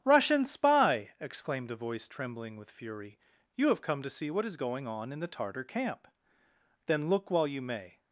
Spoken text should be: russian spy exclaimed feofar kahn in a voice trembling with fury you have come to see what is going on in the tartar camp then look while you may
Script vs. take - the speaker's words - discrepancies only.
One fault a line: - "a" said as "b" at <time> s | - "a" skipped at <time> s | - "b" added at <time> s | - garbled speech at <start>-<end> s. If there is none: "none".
- "feofar kahn in" skipped at 1.7 s